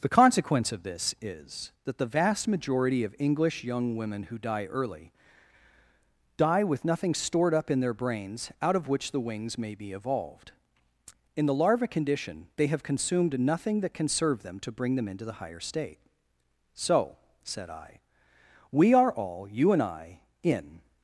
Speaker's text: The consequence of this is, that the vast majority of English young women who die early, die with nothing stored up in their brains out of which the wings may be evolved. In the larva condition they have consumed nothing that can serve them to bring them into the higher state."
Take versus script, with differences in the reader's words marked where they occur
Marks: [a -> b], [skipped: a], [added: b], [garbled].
The consequence of this is, that the vast majority of English young women who die early, die with nothing stored up in their brains out of which the wings may be evolved. In the larva condition they have consumed nothing that can serve them to bring them into the higher state." [added: So said I we are all you and I in]